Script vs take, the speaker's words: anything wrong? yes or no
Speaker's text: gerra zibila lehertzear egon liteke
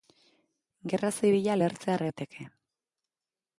yes